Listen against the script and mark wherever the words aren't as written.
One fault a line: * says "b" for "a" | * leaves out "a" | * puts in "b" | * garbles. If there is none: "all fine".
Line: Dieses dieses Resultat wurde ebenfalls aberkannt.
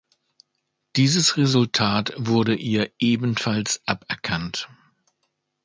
* leaves out "dieses"
* puts in "ihr"